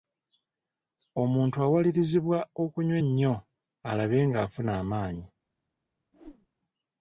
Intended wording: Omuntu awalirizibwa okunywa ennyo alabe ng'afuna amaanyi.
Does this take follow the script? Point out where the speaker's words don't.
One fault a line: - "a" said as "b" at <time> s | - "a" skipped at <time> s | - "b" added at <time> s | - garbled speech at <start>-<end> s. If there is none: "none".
none